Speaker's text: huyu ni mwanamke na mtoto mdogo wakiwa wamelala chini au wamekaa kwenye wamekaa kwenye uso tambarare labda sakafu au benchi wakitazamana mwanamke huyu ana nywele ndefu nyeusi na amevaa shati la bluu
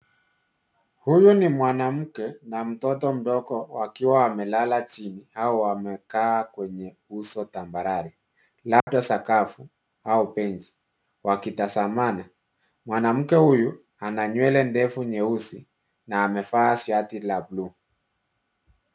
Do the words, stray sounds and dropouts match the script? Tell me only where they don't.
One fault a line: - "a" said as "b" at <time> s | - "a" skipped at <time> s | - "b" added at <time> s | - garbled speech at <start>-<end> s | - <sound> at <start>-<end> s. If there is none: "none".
- "wamekaa kwenye" skipped at 7.0 s
- dropout at 8.8-8.9 s